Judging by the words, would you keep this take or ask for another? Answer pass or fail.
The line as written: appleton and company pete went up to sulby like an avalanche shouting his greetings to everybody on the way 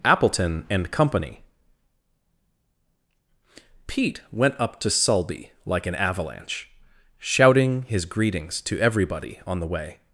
pass